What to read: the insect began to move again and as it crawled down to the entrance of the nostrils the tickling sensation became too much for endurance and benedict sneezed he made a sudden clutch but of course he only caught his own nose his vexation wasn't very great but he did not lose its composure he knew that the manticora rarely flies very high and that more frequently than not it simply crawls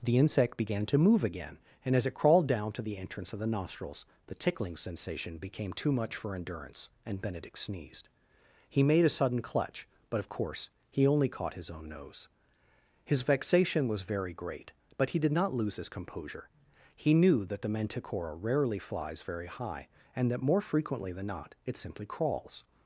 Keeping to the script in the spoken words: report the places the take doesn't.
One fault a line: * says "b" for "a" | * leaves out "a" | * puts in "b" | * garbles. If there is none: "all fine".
* says "was" for "wasn't"
* says "his" for "its"